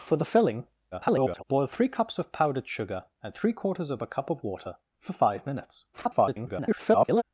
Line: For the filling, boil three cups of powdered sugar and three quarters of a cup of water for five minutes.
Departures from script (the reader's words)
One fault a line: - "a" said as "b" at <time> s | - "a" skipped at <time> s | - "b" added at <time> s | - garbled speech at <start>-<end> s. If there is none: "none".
- garbled speech at 0.9-1.4 s
- garbled speech at 5.9-7.2 s